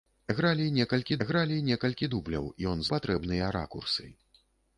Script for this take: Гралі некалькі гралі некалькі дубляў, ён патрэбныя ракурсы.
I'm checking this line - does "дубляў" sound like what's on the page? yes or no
yes